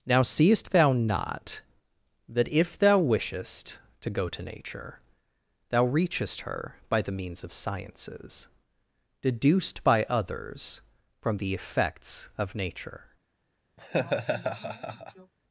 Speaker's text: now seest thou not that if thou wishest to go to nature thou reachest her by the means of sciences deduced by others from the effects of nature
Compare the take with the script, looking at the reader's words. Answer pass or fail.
pass